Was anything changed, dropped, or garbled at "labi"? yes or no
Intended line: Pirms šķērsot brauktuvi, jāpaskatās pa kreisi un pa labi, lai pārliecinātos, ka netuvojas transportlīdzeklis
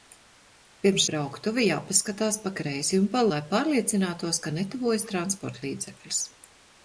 yes